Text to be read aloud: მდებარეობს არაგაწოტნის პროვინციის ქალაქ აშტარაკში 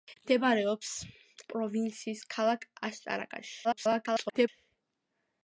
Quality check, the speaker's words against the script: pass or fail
fail